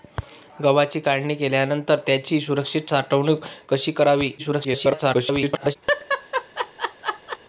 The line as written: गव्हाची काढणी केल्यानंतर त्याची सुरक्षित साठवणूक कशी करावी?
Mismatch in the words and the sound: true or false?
true